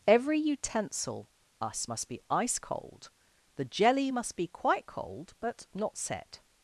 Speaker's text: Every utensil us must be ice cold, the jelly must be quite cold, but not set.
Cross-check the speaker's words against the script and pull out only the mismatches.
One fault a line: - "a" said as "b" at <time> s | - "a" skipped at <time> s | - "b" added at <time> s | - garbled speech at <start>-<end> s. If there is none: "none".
none